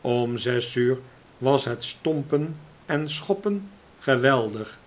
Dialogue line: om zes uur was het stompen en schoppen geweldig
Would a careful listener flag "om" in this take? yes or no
no